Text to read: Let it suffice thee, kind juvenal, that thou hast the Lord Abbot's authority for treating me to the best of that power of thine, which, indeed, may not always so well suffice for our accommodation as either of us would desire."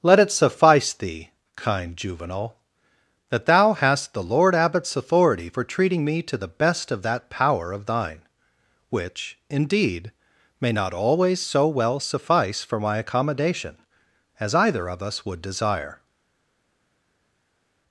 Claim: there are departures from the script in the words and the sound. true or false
true